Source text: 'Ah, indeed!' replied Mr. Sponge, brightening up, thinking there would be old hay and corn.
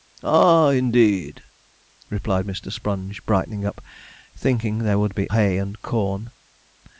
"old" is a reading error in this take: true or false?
true